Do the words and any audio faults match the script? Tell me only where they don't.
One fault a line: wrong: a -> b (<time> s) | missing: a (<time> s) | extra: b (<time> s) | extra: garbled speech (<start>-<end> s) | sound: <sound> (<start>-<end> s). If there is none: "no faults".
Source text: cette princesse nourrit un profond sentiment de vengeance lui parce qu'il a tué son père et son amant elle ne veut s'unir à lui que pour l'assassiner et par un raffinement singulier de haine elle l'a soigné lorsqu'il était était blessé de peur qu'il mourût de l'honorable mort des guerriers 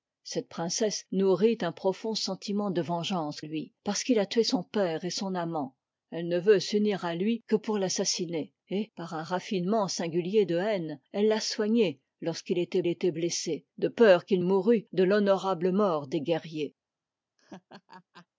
sound: laugh (17.4-18.3 s)